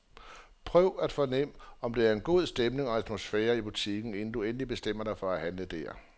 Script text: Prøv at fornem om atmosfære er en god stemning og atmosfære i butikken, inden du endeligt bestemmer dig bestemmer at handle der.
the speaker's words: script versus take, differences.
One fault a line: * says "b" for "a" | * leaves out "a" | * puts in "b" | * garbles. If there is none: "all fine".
* says "der" for "atmosfære"
* says "for" for "bestemmer"